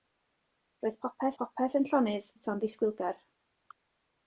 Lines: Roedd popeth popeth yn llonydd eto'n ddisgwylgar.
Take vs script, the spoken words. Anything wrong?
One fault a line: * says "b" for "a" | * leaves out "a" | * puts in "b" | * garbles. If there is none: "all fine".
all fine